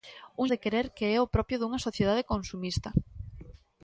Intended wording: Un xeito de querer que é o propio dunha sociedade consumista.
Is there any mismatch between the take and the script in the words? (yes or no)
yes